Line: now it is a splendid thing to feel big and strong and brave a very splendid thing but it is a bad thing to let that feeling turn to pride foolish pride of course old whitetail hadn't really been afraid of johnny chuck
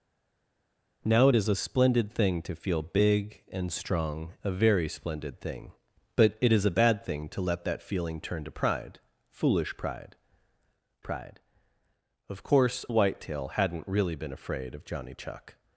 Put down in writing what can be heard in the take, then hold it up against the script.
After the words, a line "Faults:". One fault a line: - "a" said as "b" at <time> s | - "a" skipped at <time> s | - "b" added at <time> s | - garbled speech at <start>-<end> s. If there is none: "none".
now it is a splendid thing to feel big and strong a very splendid thing but it is a bad thing to let that feeling turn to pride foolish pride pride of course whitetail hadn't really been afraid of johnny chuck
Faults:
- "and brave" skipped at 4.3 s
- "pride" added at 11.0 s
- "old" skipped at 12.8 s